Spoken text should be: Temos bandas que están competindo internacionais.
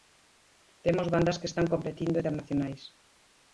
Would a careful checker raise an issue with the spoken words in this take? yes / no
no